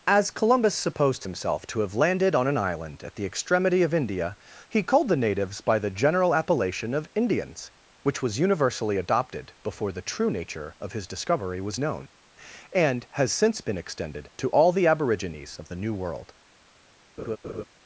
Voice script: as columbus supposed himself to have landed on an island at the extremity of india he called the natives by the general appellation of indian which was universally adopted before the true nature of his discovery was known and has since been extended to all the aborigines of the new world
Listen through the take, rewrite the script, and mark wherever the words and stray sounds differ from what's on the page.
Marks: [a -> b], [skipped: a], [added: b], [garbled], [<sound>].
as columbus supposed himself to have landed on an island at the extremity of india he called the natives by the general appellation of [indian -> indians] which was universally adopted before the true nature of his discovery was known and has since been extended to all the aborigines of the new world [laugh]